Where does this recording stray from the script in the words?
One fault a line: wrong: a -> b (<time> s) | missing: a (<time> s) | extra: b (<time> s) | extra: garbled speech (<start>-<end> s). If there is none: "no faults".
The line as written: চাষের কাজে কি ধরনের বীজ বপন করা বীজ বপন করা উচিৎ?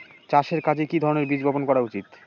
missing: বীজ বপন করা (1.8 s)